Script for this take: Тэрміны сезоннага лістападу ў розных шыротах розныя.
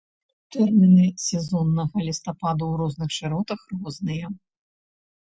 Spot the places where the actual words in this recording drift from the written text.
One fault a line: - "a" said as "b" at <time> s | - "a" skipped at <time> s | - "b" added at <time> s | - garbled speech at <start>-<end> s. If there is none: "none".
none